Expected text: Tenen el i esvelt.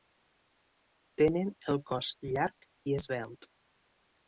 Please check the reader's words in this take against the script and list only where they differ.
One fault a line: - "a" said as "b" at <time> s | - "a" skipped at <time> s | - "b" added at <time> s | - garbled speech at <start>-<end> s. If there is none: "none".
- "cos llarg" added at 1.9 s